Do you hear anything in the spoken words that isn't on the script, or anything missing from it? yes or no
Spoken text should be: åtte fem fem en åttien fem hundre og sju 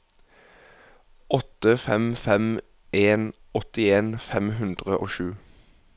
no